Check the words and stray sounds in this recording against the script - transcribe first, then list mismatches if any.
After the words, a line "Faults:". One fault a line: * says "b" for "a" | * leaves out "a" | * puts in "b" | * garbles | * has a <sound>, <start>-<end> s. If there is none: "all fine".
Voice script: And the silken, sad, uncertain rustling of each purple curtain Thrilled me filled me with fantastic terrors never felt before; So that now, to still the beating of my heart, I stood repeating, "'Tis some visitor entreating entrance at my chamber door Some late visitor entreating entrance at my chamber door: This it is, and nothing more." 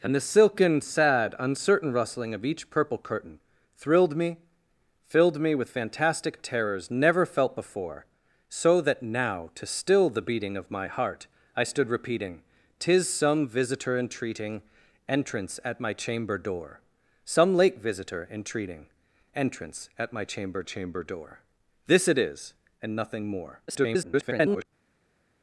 And the silken, sad, uncertain rustling of each purple curtain Thrilled me filled me with fantastic terrors never felt before; So that now, to still the beating of my heart, I stood repeating, "'Tis some visitor entreating entrance at my chamber door Some late visitor entreating entrance at my chamber chamber door: This it is, and nothing more." [garbled]
Faults:
* puts in "chamber"
* garbles